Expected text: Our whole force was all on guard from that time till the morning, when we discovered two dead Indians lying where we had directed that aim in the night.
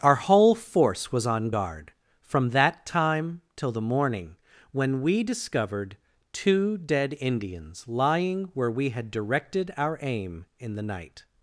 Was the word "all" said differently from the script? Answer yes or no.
yes